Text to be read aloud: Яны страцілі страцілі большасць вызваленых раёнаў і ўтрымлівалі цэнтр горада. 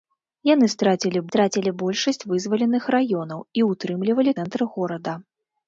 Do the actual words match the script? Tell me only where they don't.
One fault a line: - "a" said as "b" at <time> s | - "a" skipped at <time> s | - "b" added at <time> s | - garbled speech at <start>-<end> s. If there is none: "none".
none